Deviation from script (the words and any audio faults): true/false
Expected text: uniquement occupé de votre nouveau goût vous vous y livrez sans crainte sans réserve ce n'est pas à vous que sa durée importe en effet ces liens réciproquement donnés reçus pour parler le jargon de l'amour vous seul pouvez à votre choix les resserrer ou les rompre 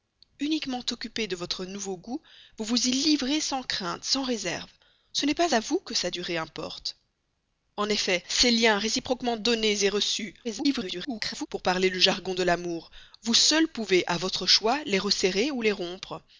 true